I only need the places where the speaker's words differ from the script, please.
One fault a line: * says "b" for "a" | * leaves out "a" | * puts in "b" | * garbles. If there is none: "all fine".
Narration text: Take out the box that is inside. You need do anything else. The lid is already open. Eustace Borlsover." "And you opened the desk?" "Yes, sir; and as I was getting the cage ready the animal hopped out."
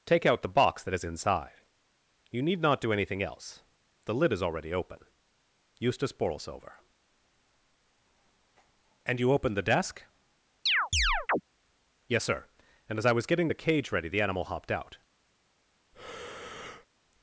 * puts in "not"